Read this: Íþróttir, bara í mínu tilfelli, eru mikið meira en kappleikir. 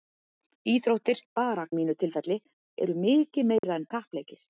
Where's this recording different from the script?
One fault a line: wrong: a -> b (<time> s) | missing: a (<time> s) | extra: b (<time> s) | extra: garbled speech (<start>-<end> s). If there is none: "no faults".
no faults